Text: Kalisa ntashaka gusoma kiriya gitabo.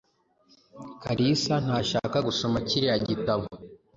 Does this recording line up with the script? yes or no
yes